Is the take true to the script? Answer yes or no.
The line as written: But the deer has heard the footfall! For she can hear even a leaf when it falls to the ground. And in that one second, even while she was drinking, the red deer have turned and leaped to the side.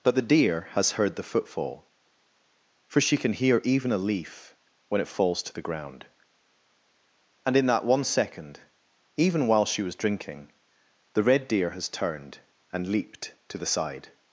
no